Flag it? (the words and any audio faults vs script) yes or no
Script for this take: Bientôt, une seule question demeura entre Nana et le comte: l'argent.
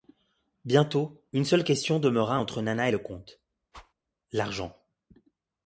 yes